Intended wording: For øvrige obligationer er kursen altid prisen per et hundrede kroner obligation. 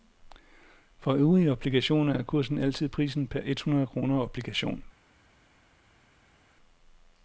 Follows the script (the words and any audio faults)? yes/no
yes